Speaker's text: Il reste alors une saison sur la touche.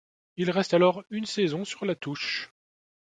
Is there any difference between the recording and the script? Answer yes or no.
no